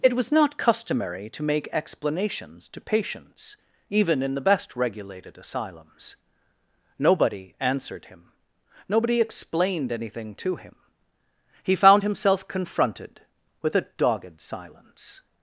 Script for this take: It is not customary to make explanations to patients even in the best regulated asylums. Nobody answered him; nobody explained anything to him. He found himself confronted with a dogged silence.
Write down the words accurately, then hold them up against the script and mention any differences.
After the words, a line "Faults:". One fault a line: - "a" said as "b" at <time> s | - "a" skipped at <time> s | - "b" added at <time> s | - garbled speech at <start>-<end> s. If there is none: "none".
It was not customary to make explanations to patients even in the best regulated asylums. Nobody answered him; nobody explained anything to him. He found himself confronted with a dogged silence.
Faults:
- "is" said as "was" at 0.1 s